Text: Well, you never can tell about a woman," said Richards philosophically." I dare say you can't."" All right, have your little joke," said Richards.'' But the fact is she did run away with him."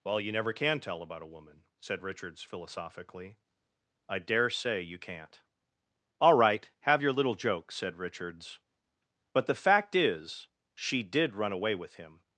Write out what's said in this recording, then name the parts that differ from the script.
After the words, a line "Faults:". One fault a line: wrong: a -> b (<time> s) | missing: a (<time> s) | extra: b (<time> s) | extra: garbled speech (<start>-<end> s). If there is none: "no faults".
Well, you never can tell about a woman," said Richards philosophically." I dare say you can't."" All right, have your little joke," said Richards.'' But the fact is she did run away with him."
Faults:
no faults